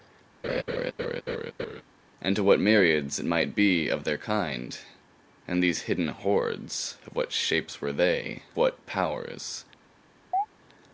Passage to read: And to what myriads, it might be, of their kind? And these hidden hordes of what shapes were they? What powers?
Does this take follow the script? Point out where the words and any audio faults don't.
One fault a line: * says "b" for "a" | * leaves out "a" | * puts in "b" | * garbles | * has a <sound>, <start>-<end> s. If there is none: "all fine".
* has a laugh, 0.4-1.8 s
* has a chirp, 10.3-10.5 s